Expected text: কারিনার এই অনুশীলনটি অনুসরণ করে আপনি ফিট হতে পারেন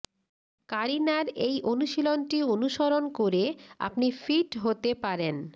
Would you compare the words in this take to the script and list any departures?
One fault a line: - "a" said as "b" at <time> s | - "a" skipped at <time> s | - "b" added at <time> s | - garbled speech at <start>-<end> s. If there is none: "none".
none